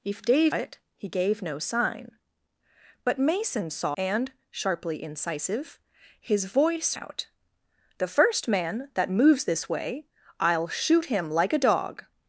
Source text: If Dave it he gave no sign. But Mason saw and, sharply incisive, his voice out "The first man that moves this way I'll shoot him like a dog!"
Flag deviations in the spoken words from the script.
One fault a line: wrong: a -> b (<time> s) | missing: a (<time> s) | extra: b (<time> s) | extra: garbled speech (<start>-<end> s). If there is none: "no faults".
no faults